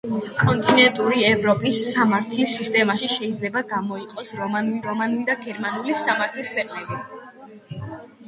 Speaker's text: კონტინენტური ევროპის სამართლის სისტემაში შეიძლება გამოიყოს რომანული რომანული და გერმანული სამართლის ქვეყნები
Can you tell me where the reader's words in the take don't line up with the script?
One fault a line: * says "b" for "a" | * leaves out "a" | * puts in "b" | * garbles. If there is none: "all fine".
all fine